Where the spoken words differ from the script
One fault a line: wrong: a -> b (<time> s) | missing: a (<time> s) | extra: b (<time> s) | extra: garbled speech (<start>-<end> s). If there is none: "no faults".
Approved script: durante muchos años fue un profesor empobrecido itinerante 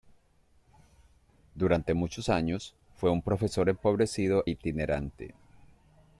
no faults